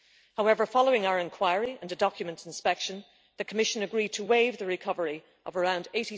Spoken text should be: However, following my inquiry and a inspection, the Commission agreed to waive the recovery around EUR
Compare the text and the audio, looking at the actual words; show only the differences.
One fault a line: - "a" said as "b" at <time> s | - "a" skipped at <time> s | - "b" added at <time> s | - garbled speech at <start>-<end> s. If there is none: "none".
- "my" said as "our" at 1.1 s
- "document" added at 1.9 s
- "of" added at 5.5 s